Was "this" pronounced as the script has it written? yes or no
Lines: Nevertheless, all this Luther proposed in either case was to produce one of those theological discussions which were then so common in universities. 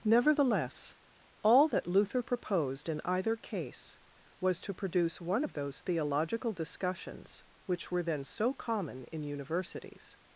no